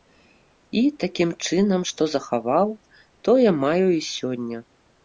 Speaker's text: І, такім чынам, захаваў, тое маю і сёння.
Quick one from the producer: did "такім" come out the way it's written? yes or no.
yes